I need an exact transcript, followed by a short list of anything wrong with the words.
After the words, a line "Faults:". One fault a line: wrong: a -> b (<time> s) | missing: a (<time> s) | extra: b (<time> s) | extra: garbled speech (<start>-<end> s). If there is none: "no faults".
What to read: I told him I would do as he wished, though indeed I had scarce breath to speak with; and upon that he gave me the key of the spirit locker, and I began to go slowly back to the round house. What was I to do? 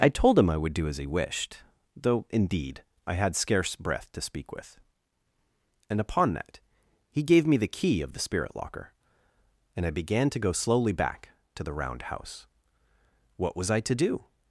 I told him I would do as he wished, though indeed I had scarce breath to speak with; and upon that he gave me the key of the spirit locker, and I began to go slowly back to the round house. What was I to do?
Faults:
no faults